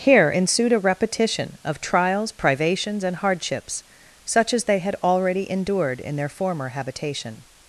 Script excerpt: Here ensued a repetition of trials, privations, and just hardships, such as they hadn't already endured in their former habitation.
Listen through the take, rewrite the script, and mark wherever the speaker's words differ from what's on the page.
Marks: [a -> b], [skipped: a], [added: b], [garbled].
Here ensued a repetition of trials, privations, and [skipped: just] hardships, such as they [hadn't -> had] already endured in their former habitation.